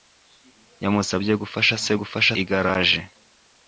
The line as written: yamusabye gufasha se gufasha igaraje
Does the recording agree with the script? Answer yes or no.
yes